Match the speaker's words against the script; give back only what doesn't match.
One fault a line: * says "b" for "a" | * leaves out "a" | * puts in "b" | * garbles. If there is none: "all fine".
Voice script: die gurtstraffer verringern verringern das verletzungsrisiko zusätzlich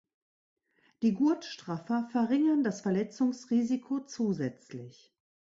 * leaves out "verringern"